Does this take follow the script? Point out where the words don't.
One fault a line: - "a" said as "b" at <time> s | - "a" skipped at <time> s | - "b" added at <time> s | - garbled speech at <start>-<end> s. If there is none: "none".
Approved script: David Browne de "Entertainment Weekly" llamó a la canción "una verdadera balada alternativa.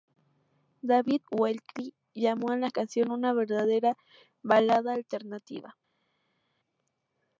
- "Browne de Entertainment" skipped at 1.2 s